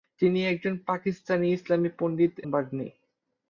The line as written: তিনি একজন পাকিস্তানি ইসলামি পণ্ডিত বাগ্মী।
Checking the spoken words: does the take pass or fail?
pass